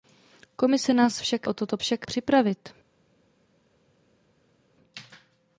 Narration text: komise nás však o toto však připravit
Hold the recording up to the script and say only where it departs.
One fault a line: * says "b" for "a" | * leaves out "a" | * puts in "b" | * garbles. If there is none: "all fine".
all fine